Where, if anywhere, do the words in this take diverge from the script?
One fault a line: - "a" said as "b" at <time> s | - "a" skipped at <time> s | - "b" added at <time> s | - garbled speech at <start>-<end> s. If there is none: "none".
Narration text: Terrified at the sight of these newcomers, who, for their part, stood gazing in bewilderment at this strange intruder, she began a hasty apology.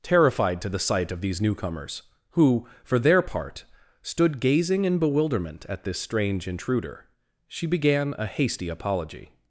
- "at" said as "to" at 0.6 s